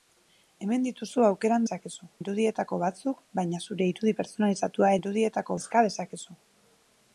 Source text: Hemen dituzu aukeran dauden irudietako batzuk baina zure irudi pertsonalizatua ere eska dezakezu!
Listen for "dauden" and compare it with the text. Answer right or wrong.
wrong